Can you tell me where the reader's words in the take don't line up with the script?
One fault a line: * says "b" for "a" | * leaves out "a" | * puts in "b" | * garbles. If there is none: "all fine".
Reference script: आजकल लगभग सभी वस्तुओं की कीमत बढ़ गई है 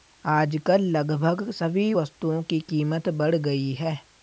all fine